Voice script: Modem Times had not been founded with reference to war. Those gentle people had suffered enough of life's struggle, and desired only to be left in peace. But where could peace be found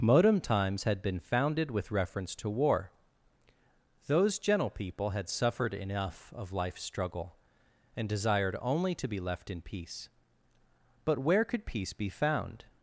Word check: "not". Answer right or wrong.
wrong